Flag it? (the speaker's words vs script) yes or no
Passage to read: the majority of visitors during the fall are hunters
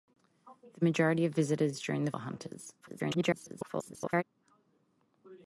yes